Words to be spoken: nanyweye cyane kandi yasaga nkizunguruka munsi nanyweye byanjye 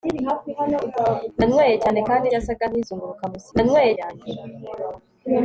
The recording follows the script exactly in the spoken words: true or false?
true